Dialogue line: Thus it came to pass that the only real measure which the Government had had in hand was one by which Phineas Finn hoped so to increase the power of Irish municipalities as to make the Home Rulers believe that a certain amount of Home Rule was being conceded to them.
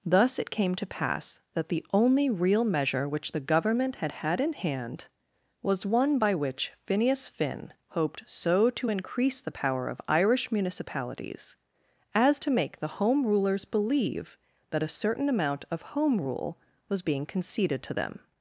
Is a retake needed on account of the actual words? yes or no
no